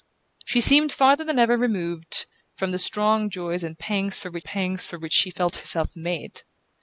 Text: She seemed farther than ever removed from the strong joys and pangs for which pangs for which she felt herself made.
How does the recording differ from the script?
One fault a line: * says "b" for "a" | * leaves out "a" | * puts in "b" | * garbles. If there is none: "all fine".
all fine